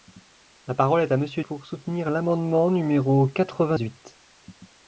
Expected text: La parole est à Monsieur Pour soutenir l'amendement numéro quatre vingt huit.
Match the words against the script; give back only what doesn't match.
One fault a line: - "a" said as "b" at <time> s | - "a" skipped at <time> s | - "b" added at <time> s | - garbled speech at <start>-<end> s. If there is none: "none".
none